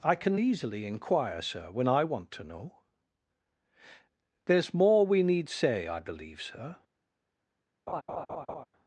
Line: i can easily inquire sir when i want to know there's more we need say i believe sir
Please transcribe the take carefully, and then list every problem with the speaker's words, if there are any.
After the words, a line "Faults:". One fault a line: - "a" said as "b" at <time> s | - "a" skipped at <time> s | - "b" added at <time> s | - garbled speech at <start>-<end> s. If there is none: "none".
i can easily inquire sir when i want to know there's more we need say i believe sir
Faults:
none